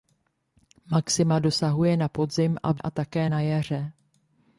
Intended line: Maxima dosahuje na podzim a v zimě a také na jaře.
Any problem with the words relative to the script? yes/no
yes